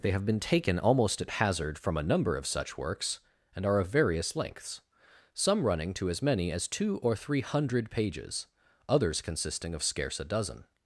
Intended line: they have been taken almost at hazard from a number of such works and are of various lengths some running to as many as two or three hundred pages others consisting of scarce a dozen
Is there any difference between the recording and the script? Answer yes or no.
no